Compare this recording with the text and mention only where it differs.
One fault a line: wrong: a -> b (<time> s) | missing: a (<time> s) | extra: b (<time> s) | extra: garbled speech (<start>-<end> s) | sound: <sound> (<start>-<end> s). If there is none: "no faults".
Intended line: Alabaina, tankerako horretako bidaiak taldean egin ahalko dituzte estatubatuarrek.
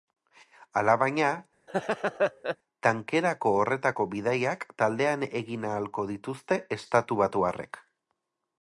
sound: laugh (1.7-2.6 s)